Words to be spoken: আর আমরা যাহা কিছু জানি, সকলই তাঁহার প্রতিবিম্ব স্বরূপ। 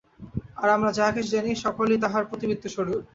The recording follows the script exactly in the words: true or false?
true